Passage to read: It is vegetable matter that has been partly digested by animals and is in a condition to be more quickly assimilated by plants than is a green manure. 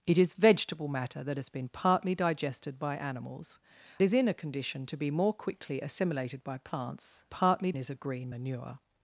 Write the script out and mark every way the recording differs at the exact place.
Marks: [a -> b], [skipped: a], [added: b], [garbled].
It is vegetable matter that has been partly digested by animals [skipped: and] is in a condition to be more quickly assimilated by plants [than -> partly] is a green manure.